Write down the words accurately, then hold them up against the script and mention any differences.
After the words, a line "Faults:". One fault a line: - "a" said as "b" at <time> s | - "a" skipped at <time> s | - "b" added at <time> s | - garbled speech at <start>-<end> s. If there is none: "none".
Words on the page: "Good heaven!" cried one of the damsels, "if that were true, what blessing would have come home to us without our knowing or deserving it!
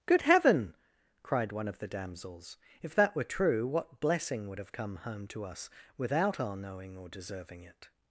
"Good heaven!" cried one of the damsels, "if that were true, what blessing would have come home to us without our knowing or deserving it!
Faults:
none